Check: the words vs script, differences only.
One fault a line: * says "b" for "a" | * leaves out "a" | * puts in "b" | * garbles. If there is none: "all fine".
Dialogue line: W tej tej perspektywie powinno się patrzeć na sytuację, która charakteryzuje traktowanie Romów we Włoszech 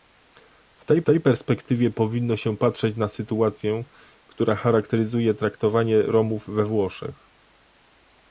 all fine